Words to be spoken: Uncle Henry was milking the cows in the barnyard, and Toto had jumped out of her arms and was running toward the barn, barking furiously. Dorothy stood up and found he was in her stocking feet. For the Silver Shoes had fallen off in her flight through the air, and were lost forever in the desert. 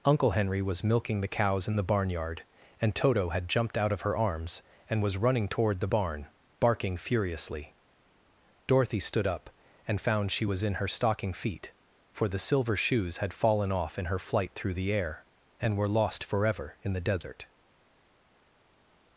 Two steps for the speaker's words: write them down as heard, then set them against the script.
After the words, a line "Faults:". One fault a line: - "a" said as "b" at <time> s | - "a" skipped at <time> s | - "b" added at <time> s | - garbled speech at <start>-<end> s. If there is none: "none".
Uncle Henry was milking the cows in the barnyard, and Toto had jumped out of her arms and was running toward the barn, barking furiously. Dorothy stood up and found she was in her stocking feet. For the Silver Shoes had fallen off in her flight through the air, and were lost forever in the desert.
Faults:
- "he" said as "she" at 10.3 s